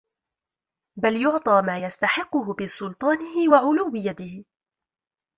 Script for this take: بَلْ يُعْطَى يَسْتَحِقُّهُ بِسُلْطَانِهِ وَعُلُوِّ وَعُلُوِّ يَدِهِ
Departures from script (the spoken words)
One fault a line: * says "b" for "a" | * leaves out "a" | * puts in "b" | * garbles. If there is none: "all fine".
* puts in "مَا"
* leaves out "وَعُلُوِّ"